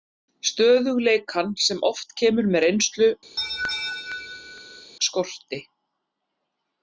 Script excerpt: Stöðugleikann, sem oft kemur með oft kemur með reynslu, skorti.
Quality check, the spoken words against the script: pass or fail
fail